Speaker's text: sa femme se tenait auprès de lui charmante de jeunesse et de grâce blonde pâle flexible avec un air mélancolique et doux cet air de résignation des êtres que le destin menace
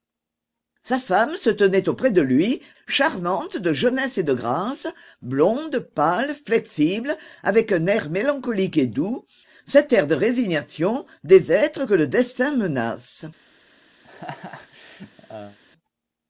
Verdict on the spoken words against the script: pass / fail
pass